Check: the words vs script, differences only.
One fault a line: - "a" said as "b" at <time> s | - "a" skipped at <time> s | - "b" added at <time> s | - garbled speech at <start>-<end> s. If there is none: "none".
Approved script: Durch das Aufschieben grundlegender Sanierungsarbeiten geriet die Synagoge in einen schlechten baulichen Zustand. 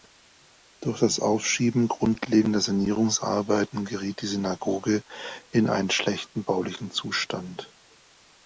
none